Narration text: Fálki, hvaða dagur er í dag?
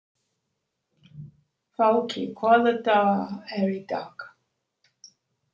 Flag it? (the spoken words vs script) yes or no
no